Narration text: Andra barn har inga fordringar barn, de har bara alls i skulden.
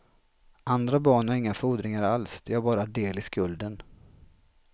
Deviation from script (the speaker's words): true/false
true